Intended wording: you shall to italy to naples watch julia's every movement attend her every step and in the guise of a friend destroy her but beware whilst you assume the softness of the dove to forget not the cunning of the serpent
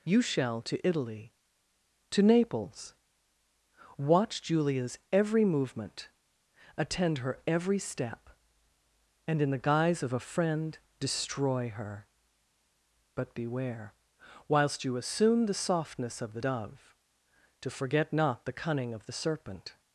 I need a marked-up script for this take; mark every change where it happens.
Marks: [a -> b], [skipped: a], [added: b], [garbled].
you shall to italy to naples watch julia's every movement attend her every step and in the guise of a friend destroy her but beware whilst you assume the softness of the dove to forget not the cunning of the serpent